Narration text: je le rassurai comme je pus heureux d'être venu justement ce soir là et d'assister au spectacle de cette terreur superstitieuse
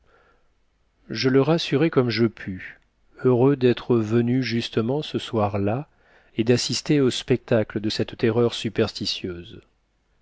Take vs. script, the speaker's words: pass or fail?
pass